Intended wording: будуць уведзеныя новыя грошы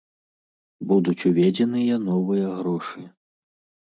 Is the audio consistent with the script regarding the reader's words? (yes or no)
yes